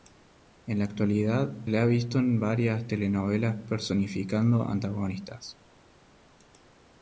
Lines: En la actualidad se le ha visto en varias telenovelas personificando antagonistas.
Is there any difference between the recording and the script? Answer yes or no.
yes